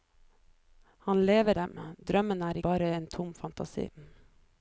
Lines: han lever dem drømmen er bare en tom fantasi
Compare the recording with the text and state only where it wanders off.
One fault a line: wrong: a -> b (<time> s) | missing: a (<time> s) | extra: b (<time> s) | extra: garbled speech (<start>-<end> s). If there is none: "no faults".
no faults